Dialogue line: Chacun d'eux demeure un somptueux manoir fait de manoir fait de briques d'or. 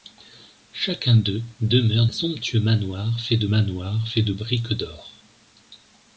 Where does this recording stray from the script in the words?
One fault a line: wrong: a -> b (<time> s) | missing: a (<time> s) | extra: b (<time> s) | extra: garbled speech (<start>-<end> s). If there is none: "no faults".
no faults